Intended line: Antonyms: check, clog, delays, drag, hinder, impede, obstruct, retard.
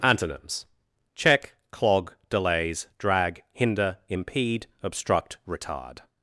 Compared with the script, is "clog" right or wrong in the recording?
right